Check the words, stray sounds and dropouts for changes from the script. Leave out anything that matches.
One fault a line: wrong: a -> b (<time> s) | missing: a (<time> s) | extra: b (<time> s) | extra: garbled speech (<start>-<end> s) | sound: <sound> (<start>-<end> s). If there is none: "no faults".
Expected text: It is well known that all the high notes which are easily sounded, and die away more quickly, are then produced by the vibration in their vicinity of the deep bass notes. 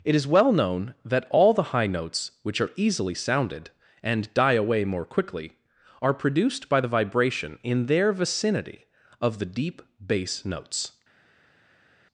missing: then (6.1 s)